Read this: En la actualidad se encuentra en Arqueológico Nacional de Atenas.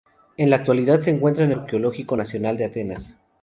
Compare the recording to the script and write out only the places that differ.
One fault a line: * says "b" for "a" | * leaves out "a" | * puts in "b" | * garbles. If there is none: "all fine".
all fine